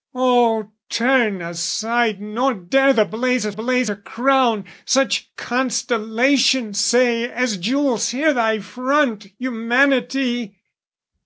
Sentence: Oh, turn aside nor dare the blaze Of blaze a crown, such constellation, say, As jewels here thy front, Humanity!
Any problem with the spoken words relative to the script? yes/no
no